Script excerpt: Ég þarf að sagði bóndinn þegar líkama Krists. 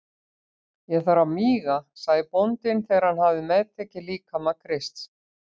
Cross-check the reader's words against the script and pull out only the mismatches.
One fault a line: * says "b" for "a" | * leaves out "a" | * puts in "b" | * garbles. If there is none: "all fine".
* puts in "míga"
* puts in "hann hafði meðtekið"